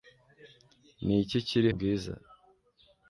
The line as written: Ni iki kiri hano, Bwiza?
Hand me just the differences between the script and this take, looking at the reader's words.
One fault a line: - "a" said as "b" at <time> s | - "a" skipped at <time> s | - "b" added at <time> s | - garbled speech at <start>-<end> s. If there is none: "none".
- "hano" skipped at 1.7 s